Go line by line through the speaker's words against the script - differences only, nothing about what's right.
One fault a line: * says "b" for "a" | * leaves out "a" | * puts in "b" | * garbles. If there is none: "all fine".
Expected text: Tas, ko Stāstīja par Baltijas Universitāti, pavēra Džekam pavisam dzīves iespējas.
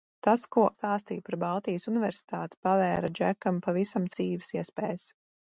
all fine